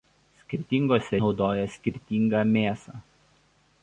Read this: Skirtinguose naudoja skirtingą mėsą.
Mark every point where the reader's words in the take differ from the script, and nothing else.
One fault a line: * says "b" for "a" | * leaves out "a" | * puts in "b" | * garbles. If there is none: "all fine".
all fine